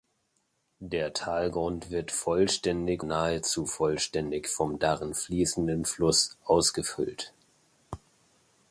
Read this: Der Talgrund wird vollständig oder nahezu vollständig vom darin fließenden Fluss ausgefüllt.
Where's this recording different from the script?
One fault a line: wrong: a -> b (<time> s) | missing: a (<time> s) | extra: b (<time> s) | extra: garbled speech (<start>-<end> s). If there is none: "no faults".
missing: oder (3.0 s)